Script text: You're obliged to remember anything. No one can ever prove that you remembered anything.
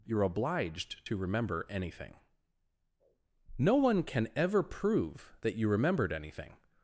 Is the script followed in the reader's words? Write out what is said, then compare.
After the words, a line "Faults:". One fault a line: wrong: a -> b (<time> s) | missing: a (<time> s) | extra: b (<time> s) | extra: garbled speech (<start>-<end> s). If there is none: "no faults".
You're obliged to remember anything. No one can ever prove that you remembered anything.
Faults:
no faults